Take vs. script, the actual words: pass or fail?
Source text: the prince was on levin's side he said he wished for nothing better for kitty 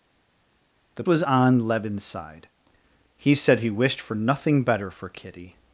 fail